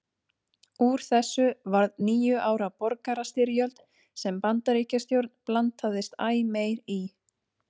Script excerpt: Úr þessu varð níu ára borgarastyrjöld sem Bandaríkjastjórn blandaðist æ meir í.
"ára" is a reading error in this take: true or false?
false